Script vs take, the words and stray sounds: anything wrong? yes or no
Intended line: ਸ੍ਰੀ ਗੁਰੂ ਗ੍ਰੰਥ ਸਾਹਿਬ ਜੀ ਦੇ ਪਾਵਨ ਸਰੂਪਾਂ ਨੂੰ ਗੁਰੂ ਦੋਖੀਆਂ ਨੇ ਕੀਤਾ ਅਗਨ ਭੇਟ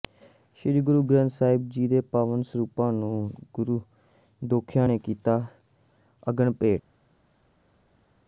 no